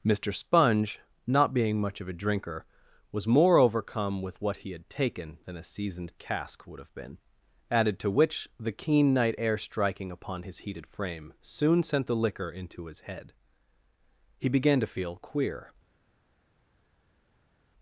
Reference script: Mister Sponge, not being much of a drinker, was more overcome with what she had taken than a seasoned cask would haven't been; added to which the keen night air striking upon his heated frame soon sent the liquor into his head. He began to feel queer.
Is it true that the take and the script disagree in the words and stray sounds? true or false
true